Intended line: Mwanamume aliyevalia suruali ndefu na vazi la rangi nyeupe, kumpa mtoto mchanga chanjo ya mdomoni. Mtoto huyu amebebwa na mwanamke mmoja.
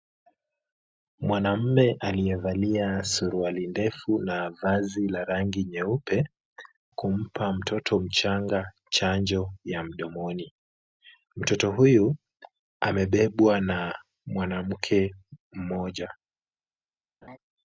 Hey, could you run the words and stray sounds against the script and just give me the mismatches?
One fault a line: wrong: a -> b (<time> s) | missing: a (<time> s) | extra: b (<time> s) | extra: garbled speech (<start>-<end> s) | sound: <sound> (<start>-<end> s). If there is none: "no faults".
sound: laugh (17.2-17.4 s)